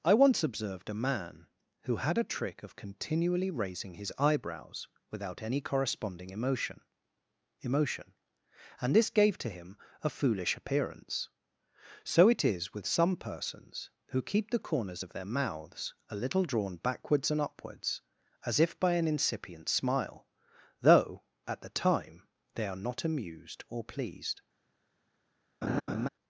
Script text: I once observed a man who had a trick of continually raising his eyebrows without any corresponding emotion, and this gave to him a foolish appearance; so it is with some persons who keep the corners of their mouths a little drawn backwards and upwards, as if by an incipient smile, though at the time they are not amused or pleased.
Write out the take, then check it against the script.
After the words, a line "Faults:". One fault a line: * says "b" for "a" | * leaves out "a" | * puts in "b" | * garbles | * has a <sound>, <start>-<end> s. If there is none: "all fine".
I once observed a man who had a trick of continually raising his eyebrows without any corresponding emotion emotion, and this gave to him a foolish appearance; so it is with some persons who keep the corners of their mouths a little drawn backwards and upwards, as if by an incipient smile, though at the time they are not amused or pleased.
Faults:
* puts in "emotion"
* has a laugh, 25.6-26.1 s